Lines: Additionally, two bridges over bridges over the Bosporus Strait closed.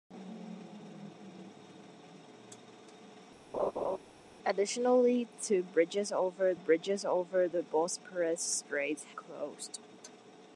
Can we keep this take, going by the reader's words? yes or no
yes